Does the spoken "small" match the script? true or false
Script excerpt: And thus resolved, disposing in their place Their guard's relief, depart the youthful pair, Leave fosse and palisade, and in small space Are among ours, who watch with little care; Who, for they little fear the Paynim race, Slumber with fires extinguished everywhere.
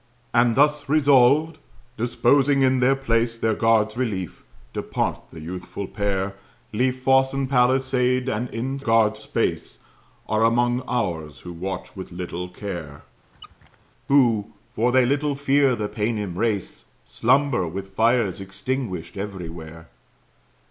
false